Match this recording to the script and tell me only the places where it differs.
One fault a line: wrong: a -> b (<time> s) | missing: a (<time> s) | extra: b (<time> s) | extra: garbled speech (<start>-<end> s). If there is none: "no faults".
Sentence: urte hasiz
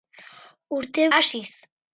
no faults